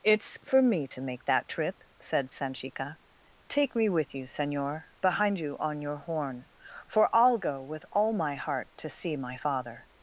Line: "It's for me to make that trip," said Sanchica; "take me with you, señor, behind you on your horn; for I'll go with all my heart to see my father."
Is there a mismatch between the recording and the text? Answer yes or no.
no